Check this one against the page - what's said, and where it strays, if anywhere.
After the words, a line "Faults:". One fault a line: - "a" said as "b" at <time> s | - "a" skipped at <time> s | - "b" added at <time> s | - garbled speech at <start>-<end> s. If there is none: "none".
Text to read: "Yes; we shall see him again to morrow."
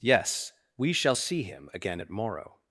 "Yes; we shall see him again at morrow."
Faults:
- "to" said as "at" at 2.0 s